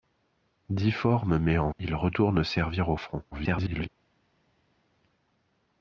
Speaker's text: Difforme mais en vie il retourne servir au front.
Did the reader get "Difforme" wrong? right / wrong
right